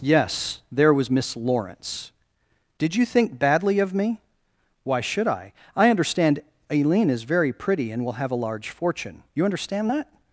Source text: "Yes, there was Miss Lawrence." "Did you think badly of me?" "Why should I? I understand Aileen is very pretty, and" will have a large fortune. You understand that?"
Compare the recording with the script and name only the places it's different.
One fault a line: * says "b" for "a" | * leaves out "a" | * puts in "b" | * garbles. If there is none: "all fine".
all fine